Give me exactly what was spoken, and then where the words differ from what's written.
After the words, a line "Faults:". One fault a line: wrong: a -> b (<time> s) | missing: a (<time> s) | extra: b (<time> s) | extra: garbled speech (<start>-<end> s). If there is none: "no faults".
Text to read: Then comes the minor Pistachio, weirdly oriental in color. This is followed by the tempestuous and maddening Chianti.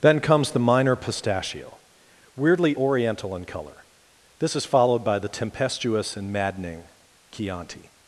Then comes the minor Pistachio, weirdly oriental in color. This is followed by the tempestuous and maddening Chianti.
Faults:
no faults